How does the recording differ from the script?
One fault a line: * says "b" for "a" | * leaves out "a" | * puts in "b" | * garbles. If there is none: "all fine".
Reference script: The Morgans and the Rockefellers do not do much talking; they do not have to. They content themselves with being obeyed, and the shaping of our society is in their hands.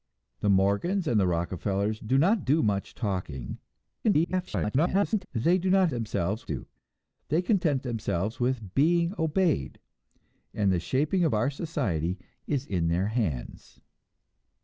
* garbles
* says "themselves" for "have"